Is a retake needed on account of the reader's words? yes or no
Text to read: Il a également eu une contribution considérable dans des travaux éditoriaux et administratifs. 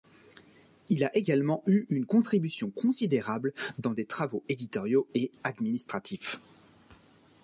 no